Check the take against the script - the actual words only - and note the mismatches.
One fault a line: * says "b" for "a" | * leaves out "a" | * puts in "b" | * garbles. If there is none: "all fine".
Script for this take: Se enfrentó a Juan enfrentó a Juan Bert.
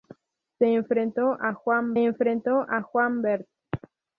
all fine